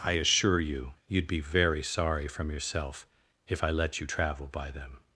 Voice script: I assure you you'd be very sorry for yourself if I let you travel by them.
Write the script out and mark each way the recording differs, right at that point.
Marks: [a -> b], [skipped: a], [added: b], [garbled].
I assure you you'd be very sorry [for -> from] yourself if I let you travel by them.